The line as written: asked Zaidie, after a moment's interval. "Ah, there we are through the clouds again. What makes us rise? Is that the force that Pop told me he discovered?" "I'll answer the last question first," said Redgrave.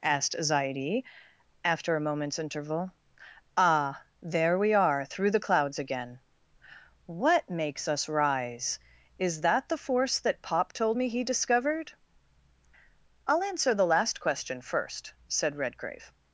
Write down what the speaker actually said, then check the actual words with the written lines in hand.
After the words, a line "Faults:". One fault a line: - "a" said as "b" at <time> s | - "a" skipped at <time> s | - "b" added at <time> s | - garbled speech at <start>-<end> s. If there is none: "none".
asked Zaidie, after a moment's interval. "Ah, there we are through the clouds again. What makes us rise? Is that the force that Pop told me he discovered?" "I'll answer the last question first," said Redgrave.
Faults:
none